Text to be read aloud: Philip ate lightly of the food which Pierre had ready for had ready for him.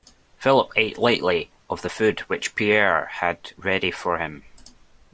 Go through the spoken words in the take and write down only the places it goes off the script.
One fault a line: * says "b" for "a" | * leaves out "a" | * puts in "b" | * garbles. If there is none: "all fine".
* leaves out "had ready for"